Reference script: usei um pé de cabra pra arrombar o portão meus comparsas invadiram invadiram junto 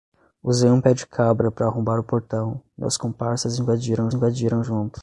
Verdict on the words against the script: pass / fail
pass